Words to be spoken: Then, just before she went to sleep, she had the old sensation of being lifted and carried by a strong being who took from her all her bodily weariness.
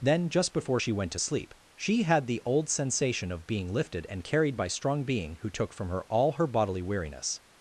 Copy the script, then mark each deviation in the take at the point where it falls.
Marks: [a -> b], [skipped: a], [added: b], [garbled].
Then, just before she went to sleep, she had the old sensation of being lifted and carried by [skipped: a] strong being who took from her all her bodily weariness.